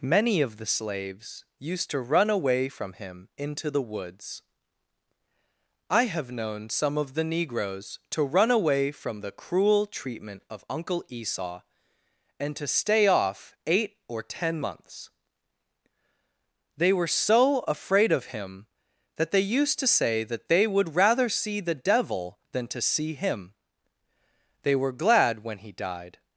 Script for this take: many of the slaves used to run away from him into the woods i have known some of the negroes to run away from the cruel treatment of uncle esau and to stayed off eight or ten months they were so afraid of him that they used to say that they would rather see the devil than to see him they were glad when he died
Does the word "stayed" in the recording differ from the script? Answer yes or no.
yes